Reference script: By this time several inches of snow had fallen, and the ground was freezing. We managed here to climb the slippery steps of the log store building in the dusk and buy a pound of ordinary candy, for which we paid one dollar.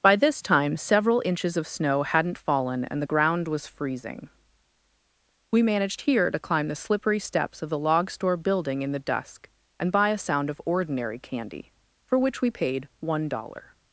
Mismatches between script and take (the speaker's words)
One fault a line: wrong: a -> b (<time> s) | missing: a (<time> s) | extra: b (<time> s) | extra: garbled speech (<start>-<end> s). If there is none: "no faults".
wrong: had -> hadn't (2.0 s)
wrong: pound -> sound (10.2 s)